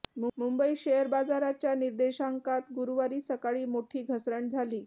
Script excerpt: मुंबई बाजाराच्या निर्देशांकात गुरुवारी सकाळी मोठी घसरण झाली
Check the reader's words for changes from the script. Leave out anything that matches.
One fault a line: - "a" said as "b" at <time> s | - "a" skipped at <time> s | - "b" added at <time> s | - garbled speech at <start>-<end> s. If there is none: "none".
- "शेअर" added at 0.8 s